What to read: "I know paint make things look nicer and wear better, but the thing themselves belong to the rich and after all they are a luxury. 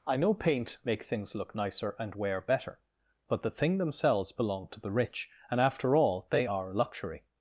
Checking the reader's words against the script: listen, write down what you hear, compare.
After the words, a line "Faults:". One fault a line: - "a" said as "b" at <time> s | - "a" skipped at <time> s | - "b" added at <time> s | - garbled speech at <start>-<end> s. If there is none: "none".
"I know paint make things look nicer and wear better, but the thing themselves belong to the rich and after all they are a luxury.
Faults:
none